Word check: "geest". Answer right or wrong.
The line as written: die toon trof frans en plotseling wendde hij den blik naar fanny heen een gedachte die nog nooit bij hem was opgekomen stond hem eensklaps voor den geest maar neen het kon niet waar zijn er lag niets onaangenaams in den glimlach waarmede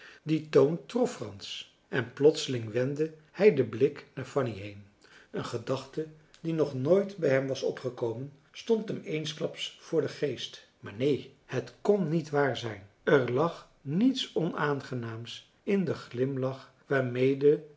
right